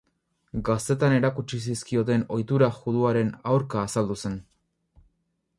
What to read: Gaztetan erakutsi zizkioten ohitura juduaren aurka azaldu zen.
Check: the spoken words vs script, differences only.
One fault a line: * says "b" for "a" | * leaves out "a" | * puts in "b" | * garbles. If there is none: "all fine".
all fine